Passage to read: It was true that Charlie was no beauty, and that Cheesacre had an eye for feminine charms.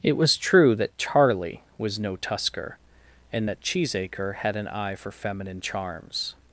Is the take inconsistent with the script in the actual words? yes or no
yes